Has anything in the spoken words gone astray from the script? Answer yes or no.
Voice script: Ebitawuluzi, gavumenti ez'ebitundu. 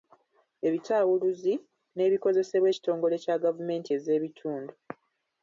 yes